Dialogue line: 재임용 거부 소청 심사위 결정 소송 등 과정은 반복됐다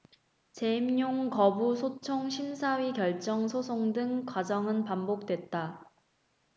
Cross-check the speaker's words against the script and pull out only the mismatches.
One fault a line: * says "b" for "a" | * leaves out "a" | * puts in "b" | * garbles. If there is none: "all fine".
all fine